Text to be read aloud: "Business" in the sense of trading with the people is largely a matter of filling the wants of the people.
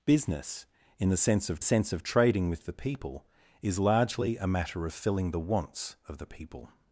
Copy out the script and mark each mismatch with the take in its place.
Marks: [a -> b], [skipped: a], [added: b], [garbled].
"Business" in the sense of [added: sense of] trading with the people is largely a matter of filling the wants of the people.